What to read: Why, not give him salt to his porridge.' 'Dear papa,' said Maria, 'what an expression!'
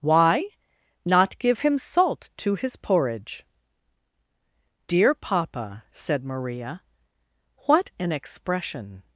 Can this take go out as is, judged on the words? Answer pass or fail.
pass